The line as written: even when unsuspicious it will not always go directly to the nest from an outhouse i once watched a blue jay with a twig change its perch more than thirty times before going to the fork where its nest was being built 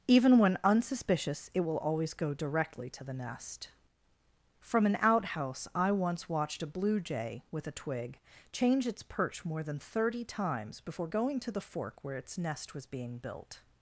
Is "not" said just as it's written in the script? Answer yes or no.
no